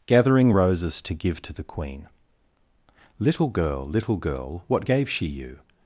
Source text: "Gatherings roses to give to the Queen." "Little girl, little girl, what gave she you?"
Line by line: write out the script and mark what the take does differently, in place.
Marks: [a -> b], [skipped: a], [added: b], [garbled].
["Gatherings -> Gathering] roses to give to the Queen." "Little girl, little girl, what gave she you?"